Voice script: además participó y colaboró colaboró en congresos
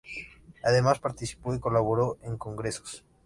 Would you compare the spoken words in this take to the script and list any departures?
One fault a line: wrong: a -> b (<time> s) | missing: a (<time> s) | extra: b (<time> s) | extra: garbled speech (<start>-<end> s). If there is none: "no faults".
missing: colaboró (2.2 s)